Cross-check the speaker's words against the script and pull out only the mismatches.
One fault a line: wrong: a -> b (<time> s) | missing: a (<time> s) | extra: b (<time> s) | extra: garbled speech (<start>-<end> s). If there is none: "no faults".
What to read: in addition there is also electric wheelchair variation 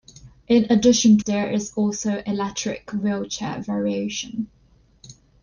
no faults